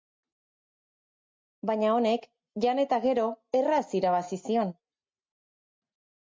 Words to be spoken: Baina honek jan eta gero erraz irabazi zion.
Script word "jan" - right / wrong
right